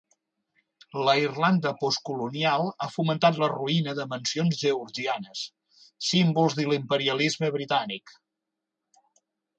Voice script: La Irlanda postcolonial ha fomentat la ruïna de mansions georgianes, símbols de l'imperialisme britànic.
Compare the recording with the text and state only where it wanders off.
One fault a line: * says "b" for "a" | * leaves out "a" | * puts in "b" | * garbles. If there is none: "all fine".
all fine